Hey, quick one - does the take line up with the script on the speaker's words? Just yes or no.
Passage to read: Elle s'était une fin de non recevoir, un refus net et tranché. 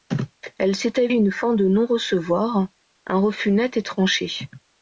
yes